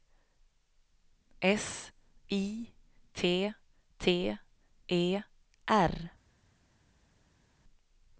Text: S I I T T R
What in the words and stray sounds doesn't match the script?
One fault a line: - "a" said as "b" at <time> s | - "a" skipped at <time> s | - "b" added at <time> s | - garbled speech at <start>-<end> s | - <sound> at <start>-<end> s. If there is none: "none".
- "I" said as "T" at 3.1 s
- "T" said as "E" at 4.9 s